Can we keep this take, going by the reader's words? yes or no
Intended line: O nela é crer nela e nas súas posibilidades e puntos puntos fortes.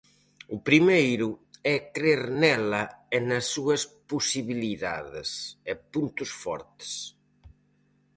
no